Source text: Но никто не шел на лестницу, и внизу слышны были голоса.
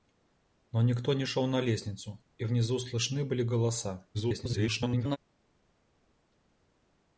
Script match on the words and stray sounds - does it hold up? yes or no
no